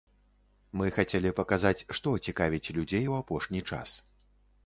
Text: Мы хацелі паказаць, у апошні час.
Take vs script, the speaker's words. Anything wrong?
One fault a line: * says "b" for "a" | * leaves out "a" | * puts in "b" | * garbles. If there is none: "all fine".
* puts in "што цікавіць людзей"